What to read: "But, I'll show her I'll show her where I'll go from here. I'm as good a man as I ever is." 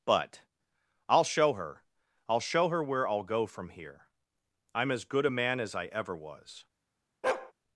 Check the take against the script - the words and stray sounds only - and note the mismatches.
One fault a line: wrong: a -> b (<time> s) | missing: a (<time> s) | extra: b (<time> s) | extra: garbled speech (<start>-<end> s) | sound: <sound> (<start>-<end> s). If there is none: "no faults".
wrong: is -> was (6.2 s)
sound: bark (7.2-7.5 s)